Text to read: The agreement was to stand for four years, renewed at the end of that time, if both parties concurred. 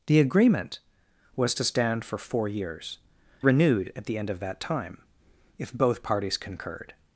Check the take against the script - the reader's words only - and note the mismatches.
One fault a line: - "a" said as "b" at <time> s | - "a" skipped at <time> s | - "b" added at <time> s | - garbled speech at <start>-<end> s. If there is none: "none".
none